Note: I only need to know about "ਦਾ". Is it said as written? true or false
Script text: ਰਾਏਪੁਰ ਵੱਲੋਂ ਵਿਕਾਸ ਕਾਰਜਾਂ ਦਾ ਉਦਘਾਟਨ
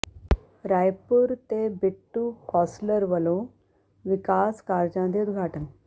false